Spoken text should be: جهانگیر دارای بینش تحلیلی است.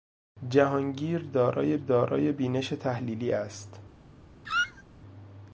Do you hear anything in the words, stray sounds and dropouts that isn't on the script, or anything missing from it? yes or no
yes